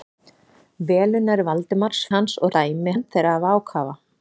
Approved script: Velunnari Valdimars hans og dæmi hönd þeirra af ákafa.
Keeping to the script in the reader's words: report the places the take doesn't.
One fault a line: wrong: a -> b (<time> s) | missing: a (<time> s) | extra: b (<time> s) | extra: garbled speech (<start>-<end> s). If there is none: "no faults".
no faults